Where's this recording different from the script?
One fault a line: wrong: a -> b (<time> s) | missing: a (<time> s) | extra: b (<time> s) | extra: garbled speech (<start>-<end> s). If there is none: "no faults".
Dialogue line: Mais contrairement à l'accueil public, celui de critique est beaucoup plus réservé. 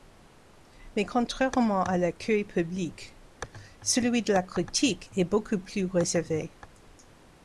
extra: la (4.3 s)